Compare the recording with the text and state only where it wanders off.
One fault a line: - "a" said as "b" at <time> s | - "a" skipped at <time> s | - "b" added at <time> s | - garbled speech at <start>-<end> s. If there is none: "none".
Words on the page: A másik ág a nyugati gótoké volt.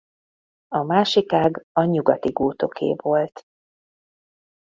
none